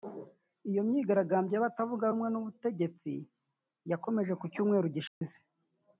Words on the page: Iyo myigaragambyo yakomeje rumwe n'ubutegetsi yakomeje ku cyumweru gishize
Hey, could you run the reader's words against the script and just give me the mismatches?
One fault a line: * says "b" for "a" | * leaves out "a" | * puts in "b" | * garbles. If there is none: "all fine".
* says "y'abatavuga" for "yakomeje"